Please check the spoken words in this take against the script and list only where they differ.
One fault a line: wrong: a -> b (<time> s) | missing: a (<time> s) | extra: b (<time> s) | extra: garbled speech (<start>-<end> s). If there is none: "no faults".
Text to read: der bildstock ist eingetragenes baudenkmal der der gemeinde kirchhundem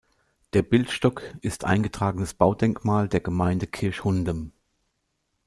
missing: der (3.2 s)